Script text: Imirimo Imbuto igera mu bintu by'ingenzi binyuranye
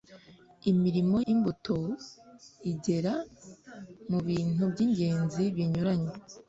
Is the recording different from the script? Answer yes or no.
no